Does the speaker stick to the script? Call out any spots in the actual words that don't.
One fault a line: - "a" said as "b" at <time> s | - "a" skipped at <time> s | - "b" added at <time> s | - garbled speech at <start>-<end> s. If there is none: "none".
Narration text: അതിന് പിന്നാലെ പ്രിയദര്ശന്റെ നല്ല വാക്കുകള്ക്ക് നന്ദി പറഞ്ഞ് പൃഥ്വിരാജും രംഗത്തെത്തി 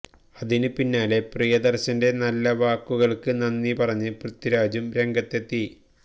none